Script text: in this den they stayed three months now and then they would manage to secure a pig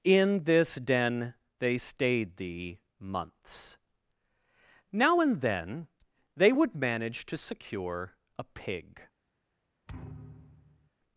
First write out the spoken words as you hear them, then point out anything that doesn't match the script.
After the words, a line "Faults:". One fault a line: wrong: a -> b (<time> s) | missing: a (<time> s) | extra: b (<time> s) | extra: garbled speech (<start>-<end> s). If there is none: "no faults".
in this den they stayed thee months now and then they would manage to secure a pig
Faults:
wrong: three -> thee (2.4 s)